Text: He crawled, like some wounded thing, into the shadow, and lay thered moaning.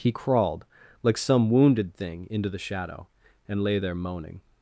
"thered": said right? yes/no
no